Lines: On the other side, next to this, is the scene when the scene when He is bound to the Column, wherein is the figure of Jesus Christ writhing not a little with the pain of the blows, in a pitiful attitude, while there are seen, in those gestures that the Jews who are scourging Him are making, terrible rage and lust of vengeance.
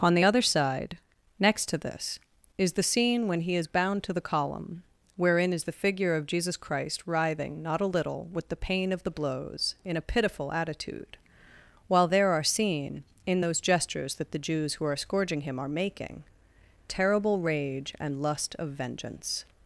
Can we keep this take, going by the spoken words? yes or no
no